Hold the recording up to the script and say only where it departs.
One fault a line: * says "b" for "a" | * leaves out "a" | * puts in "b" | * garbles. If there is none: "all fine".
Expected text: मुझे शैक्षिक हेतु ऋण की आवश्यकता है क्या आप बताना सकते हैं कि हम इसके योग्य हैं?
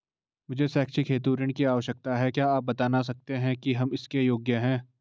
all fine